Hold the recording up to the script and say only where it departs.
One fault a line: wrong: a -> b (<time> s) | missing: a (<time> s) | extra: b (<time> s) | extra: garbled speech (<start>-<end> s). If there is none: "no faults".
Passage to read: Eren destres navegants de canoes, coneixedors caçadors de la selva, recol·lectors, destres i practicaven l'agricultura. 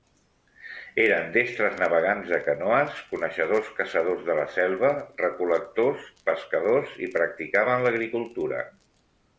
wrong: destres -> pescadors (6.3 s)